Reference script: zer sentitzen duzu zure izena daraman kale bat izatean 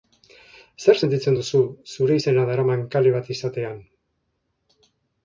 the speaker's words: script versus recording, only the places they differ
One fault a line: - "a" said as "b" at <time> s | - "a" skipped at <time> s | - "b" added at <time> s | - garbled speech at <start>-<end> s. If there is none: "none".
none